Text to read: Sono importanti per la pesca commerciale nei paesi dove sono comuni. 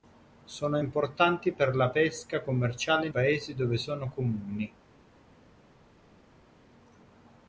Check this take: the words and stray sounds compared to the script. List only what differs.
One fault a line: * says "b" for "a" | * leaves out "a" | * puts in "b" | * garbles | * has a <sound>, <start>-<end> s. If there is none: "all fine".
* leaves out "nei"